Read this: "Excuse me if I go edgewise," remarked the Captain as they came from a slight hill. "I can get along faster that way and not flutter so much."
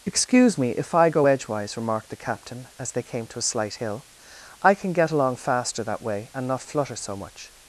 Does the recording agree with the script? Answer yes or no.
no